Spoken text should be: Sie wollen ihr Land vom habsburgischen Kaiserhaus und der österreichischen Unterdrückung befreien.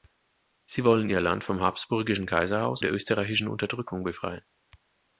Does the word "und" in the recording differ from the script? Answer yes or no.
yes